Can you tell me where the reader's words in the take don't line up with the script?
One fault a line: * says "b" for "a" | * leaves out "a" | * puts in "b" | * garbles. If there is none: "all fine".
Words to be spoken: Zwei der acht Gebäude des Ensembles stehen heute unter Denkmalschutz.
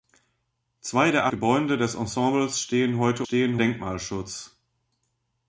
* leaves out "acht"
* says "stehen" for "unter"